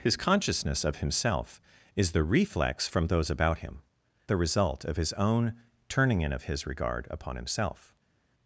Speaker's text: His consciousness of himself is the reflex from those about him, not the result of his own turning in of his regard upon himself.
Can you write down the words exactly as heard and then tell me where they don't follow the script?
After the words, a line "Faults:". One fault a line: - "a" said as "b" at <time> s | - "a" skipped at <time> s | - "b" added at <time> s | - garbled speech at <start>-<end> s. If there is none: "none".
His consciousness of himself is the reflex from those about him, the result of his own turning in of his regard upon himself.
Faults:
- "not" skipped at 3.8 s